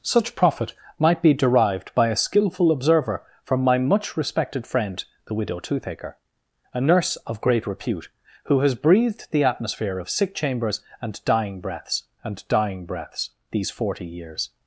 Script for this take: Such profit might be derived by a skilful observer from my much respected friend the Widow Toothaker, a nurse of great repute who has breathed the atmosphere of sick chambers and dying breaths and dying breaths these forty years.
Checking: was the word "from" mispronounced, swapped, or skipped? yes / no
no